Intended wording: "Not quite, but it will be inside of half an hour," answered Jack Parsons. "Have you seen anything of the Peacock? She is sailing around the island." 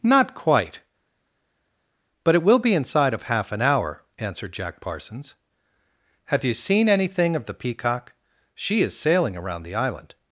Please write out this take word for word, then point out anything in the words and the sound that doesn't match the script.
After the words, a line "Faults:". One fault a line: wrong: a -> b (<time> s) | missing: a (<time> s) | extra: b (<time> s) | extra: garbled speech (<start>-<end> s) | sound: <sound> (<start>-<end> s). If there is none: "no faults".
"Not quite, but it will be inside of half an hour," answered Jack Parsons. "Have you seen anything of the Peacock? She is sailing around the island."
Faults:
no faults